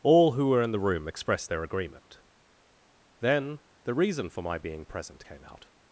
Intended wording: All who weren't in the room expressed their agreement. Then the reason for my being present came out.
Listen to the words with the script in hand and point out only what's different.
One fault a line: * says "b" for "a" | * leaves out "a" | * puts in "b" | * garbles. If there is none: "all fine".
* says "were" for "weren't"